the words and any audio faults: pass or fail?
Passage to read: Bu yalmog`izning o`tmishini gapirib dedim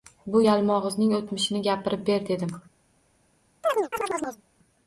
fail